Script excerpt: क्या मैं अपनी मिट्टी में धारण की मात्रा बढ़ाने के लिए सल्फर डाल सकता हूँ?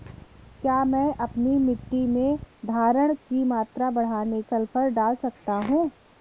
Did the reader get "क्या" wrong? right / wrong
right